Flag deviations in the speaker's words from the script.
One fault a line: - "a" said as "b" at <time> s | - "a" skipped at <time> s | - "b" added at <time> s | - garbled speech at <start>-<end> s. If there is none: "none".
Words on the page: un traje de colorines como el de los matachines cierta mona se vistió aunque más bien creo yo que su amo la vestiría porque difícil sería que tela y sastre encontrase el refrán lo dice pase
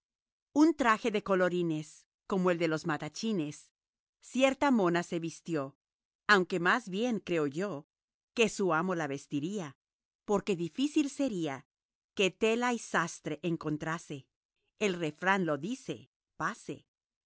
none